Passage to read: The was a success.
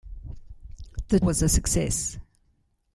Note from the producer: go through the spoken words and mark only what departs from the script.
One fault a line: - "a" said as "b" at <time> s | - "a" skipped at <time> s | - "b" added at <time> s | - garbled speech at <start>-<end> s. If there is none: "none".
none